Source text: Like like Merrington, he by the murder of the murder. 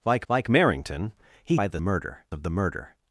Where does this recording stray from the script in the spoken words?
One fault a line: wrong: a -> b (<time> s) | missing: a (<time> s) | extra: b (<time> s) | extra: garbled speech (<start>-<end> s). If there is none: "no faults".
no faults